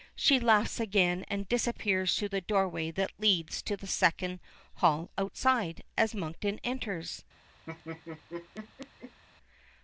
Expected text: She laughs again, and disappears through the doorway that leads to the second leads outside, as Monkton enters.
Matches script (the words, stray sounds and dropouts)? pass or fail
fail